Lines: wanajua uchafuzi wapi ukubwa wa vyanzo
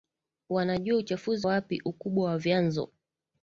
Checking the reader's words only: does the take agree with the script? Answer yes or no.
yes